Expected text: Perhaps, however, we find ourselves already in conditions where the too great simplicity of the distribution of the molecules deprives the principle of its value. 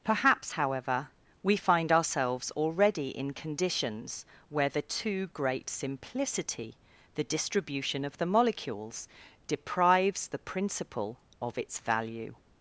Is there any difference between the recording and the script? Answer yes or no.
yes